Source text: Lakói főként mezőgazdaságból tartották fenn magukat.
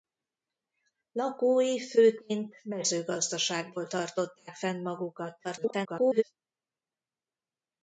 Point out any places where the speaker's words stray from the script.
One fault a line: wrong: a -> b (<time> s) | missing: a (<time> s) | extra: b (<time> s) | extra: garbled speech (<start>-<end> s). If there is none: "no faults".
extra: garbled speech (5.4-6.2 s)